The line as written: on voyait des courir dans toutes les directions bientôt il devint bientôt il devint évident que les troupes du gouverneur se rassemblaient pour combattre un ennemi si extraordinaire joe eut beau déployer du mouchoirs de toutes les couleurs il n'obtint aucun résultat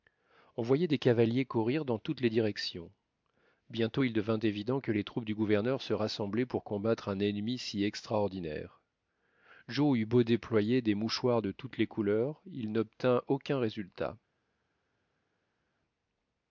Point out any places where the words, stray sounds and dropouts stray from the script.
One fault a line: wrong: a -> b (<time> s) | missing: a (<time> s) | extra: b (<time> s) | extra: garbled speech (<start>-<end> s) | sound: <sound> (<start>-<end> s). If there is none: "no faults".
extra: cavaliers (1.0 s)
missing: bientôt il devint (4.4 s)
wrong: du -> des (10.8 s)